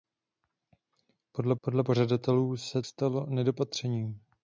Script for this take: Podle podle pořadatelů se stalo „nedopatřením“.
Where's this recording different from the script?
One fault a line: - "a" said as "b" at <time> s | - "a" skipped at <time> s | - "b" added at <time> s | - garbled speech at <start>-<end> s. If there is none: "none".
none